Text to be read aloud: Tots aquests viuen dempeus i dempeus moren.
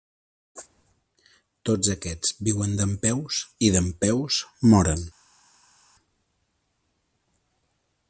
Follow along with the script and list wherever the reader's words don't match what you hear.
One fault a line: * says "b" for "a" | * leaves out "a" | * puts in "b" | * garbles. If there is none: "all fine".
all fine